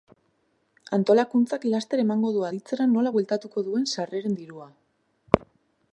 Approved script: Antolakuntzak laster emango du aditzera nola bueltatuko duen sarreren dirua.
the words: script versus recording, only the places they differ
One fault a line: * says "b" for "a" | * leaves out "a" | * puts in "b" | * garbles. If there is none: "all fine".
all fine